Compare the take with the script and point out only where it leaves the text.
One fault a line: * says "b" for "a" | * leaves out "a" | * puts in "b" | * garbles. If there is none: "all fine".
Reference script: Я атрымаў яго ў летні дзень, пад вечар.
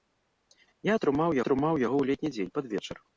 * puts in "атрымаў"